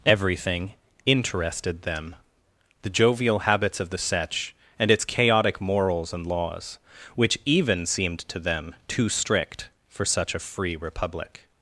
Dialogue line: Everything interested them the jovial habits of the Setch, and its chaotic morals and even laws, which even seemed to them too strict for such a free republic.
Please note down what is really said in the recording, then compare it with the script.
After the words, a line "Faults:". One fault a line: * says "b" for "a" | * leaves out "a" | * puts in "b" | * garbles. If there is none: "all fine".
Everything interested them the jovial habits of the Setch, and its chaotic morals and laws, which even seemed to them too strict for such a free republic.
Faults:
* leaves out "even"